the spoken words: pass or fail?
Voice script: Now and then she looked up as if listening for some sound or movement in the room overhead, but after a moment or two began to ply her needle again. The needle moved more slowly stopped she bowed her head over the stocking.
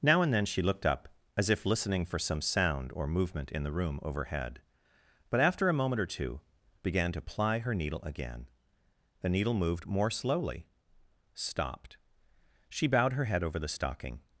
pass